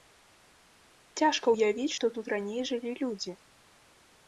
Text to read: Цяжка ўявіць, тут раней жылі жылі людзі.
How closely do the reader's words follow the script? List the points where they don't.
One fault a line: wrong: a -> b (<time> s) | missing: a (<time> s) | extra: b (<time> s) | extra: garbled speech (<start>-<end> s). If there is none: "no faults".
extra: што (2.0 s)
missing: жылі (3.0 s)